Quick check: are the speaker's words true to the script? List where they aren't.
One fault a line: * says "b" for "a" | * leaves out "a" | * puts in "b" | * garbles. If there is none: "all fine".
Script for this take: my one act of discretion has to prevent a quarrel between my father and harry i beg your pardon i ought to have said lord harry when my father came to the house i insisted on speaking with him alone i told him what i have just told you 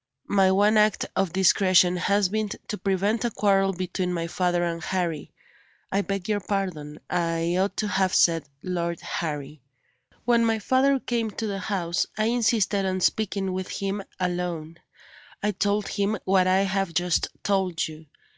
* puts in "been"